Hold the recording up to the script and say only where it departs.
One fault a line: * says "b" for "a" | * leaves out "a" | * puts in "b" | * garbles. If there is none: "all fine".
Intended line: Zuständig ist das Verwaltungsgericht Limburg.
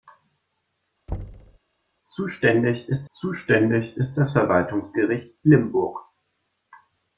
* puts in "zuständig ist"